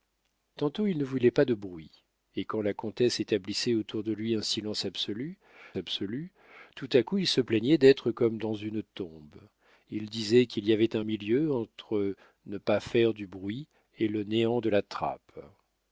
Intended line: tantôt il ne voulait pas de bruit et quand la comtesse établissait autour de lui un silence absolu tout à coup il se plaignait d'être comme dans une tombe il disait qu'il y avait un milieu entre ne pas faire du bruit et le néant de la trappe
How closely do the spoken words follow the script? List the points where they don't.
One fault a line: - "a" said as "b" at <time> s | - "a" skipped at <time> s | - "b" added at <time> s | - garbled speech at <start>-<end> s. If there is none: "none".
- "absolu" added at 5.7 s